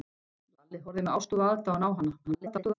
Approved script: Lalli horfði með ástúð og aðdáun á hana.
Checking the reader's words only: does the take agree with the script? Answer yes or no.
no